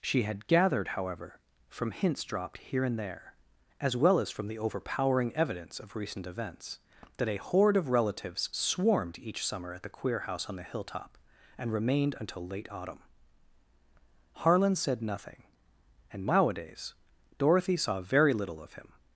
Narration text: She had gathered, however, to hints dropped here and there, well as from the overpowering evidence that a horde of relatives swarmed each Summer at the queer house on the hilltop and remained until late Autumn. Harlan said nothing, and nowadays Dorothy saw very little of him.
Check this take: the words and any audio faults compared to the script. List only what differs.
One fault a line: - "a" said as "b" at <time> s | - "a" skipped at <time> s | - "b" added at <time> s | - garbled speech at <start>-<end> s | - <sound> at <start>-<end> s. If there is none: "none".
- "to" said as "from" at 1.7 s
- "as" added at 3.8 s
- "of recent events" added at 5.8 s